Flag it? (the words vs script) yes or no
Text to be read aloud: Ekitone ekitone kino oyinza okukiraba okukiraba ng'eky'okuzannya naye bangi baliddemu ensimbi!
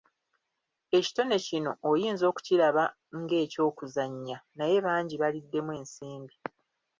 yes